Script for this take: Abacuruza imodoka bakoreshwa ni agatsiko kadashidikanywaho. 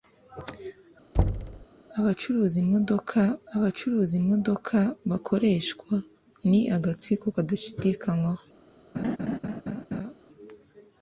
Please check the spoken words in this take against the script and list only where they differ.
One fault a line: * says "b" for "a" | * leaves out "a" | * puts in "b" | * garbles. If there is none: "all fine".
* puts in "abacuruza imodoka"